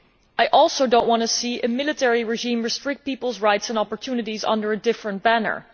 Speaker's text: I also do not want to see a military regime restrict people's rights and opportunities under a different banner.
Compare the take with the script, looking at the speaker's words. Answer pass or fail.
pass